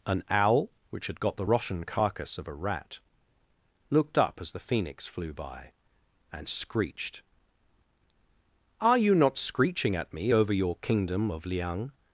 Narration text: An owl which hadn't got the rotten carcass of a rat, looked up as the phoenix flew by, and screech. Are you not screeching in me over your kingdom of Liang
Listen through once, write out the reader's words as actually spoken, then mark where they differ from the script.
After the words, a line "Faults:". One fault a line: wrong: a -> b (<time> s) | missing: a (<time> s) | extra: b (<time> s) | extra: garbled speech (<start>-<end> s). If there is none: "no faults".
An owl which had got the rotten carcass of a rat, looked up as the phoenix flew by, and screeched. Are you not screeching at me over your kingdom of Liang
Faults:
wrong: hadn't -> had (1.1 s)
wrong: screech -> screeched (6.5 s)
wrong: in -> at (10.0 s)